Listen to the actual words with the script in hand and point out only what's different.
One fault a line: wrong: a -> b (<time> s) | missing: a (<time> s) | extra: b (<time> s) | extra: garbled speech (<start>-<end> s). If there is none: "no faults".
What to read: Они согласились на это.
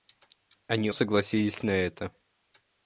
no faults